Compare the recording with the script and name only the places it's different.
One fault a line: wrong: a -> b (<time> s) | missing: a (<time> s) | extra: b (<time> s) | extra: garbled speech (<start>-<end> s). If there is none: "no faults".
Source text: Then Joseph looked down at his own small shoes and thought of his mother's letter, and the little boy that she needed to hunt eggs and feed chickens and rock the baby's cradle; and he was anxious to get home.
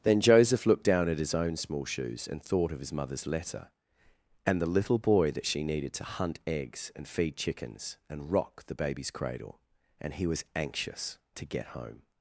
no faults